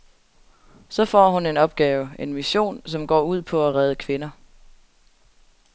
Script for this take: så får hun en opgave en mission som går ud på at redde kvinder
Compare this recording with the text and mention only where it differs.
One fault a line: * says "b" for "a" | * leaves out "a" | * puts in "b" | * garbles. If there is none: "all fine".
all fine